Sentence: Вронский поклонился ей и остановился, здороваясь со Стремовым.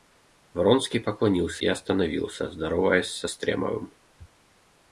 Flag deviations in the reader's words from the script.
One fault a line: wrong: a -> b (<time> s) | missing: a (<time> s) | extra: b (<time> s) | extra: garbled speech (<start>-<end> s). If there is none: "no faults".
missing: ей (1.6 s)